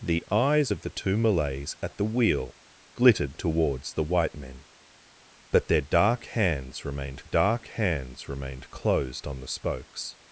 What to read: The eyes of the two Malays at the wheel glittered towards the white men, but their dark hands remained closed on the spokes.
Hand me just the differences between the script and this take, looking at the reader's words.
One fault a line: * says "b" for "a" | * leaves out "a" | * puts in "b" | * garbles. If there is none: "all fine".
* puts in "dark hands remained"